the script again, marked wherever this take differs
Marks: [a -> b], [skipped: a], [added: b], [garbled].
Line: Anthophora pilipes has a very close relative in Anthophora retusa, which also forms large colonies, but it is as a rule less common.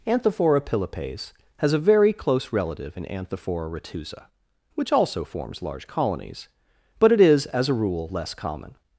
Anthophora pilipes has a very close relative in Anthophora retusa, which also forms large colonies, but it is as a rule less common.